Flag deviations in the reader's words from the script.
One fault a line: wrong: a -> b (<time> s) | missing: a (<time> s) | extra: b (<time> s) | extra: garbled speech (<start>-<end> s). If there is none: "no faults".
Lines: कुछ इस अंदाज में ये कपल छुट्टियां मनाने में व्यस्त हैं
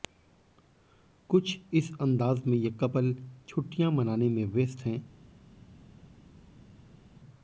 no faults